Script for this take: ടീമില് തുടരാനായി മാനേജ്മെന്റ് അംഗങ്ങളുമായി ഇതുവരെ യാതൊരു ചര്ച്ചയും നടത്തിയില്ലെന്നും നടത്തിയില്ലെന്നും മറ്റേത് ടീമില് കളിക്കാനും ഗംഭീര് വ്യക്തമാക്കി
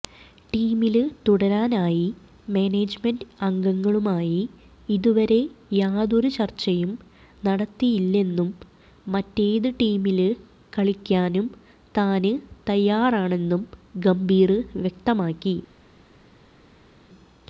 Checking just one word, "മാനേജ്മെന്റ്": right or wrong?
right